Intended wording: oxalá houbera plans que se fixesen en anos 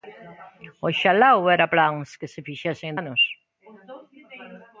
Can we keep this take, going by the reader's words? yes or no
yes